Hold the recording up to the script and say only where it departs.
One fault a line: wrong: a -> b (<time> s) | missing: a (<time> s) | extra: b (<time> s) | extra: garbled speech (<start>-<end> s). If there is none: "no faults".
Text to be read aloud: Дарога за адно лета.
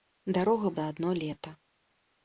no faults